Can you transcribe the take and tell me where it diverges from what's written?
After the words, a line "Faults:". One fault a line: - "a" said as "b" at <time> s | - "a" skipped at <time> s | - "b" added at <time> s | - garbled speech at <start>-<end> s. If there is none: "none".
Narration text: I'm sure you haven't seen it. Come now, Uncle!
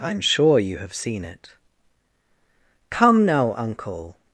I'm sure you have seen it. Come now, Uncle!
Faults:
- "haven't" said as "have" at 0.8 s